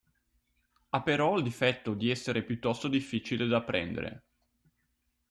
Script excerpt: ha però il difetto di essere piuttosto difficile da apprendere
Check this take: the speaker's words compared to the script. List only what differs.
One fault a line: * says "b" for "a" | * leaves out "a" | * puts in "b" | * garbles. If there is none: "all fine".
all fine